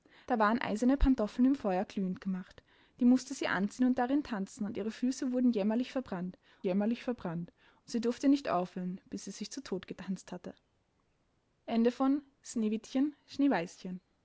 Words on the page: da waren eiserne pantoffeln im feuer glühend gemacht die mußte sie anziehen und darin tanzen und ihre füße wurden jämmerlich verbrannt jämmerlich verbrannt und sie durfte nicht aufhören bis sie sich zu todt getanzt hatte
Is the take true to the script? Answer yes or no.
yes